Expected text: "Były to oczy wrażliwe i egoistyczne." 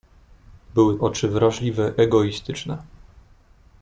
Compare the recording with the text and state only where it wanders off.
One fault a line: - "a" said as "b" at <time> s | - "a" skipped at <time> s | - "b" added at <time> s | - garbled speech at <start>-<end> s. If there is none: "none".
- "to" skipped at 1.0 s
- "i" skipped at 1.9 s